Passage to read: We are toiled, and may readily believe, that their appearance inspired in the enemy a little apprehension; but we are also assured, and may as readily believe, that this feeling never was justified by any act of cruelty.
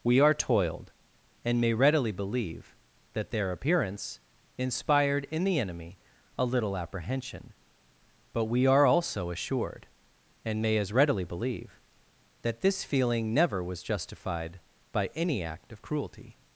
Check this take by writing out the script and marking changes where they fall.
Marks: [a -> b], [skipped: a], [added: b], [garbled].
We are toiled, and may readily believe, that their appearance inspired in the enemy a little apprehension; but we are also assured, and may as readily believe, that this feeling never was justified by any act of cruelty.